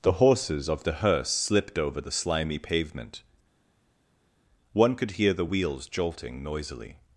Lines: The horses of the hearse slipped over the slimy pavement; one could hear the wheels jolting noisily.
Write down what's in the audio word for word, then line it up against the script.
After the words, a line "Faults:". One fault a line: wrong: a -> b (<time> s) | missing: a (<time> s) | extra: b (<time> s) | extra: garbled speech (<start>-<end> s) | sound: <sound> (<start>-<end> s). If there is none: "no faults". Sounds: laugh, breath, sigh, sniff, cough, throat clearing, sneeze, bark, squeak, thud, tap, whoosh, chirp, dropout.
The horses of the hearse slipped over the slimy pavement; one could hear the wheels jolting noisily.
Faults:
no faults